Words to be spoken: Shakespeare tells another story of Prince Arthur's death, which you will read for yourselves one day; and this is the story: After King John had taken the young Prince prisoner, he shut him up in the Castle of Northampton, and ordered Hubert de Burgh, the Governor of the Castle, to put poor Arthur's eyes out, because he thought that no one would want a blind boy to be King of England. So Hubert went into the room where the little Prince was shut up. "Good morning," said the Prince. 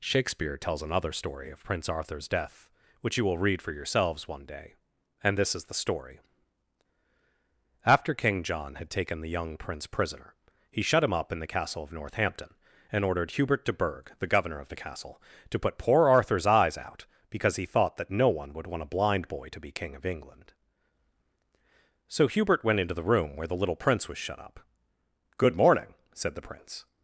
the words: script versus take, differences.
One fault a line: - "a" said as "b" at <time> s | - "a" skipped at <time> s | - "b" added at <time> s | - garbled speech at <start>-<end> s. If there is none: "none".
none